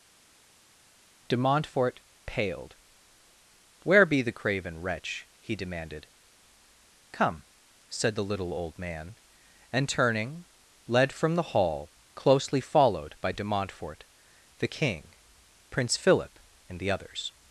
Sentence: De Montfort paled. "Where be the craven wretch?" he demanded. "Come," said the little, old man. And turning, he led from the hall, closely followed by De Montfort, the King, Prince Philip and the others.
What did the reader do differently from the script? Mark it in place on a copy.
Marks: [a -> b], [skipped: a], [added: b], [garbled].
De Montfort paled. "Where be the craven wretch?" he demanded. "Come," said the little, old man. And turning, [skipped: he] led from the hall, closely followed by De Montfort, the King, Prince Philip and the others.